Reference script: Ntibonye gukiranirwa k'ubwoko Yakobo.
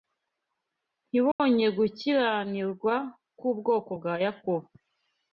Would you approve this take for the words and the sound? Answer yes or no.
no